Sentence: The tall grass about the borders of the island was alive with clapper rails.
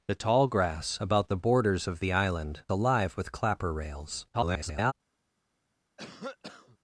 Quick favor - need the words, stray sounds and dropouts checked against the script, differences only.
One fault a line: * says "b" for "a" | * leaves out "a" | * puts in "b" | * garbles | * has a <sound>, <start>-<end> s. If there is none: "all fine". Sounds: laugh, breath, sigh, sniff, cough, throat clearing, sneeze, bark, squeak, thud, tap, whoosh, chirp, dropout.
* leaves out "was"
* garbles
* has a cough, 6.0-6.8 s